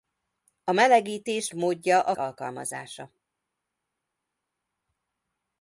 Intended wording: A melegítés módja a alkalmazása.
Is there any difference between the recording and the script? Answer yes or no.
no